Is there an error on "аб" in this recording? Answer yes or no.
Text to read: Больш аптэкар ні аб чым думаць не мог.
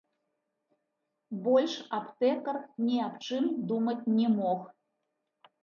no